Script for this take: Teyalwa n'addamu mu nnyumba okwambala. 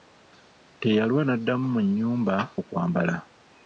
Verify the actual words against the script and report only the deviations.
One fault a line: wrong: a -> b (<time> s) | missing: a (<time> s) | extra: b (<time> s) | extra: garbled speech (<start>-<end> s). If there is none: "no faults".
no faults